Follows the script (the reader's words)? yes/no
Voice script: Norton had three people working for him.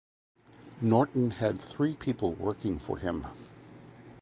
yes